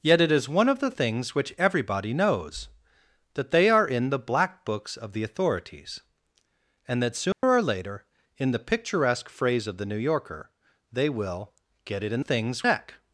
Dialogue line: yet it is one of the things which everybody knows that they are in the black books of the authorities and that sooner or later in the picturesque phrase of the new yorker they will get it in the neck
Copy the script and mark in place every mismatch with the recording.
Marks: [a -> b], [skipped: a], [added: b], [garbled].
yet it is one of the things which everybody knows that they are in the black books of the authorities and that sooner or later in the picturesque phrase of the new yorker they will get it in [the -> things] neck